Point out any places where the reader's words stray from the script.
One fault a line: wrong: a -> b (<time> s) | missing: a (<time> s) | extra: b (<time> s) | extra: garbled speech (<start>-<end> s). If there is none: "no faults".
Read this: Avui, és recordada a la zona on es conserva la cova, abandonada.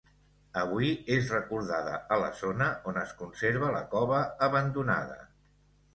no faults